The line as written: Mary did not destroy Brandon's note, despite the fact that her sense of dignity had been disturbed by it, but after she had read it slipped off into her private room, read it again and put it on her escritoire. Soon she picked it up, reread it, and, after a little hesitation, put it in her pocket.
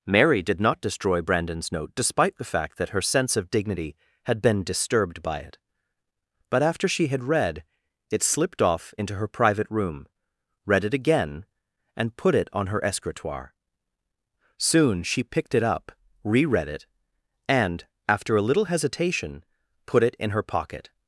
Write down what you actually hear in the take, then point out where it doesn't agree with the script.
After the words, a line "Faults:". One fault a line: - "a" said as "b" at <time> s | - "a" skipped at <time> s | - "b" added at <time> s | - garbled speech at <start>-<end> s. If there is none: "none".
Mary did not destroy Brandon's note, despite the fact that her sense of dignity had been disturbed by it, but after she had read it slipped off into her private room, read it again and put it on her escritoire. Soon she picked it up, reread it, and, after a little hesitation, put it in her pocket.
Faults:
none